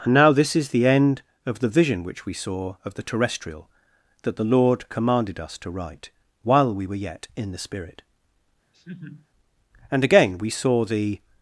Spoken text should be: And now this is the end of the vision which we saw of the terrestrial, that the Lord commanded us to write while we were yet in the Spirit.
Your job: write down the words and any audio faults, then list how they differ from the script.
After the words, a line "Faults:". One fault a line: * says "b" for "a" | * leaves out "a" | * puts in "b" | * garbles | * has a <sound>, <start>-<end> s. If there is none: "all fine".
And now this is the end of the vision which we saw of the terrestrial, that the Lord commanded us to write while we were yet in the Spirit. "And again, we saw the
Faults:
* has a laugh, 8.7-9.3 s
* puts in "And again we saw the"